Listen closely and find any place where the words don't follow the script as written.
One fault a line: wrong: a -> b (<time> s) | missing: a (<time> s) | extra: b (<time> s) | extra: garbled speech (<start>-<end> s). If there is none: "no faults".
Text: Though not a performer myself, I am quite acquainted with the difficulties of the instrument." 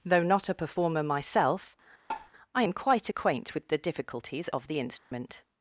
wrong: acquainted -> acquaint (3.1 s)